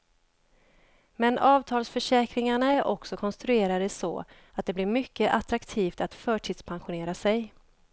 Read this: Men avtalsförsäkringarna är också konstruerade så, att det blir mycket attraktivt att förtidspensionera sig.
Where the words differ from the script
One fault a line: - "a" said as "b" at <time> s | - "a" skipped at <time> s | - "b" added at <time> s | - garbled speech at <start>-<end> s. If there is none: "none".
none